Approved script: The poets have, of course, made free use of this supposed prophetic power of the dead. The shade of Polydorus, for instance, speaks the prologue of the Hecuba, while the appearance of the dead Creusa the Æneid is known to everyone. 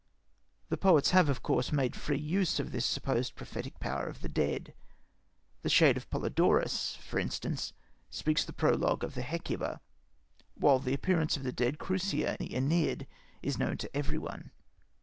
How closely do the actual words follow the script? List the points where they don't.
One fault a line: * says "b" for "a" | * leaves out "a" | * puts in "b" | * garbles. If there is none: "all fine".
all fine